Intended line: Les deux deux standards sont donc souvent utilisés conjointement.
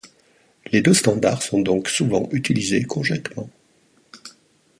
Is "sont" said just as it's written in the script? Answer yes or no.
yes